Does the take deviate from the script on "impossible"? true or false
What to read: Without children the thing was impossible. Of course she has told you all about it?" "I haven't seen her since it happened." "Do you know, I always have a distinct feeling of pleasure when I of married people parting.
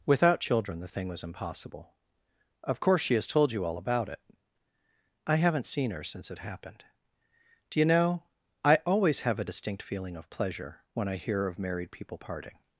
false